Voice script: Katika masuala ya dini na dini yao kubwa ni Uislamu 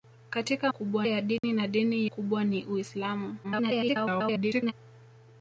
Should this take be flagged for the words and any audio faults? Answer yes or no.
yes